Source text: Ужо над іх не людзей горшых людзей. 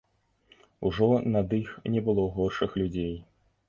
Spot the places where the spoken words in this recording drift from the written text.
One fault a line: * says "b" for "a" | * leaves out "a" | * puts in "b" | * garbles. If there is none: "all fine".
* says "было" for "людзей"